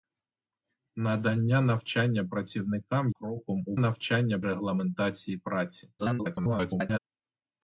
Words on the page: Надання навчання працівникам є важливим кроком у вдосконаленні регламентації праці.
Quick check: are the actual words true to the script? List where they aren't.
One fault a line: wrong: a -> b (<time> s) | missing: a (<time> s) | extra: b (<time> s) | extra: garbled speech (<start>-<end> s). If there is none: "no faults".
missing: є важливим (3.1 s)
wrong: вдосконаленні -> навчання (3.8 s)
extra: garbled speech (6.0-7.0 s)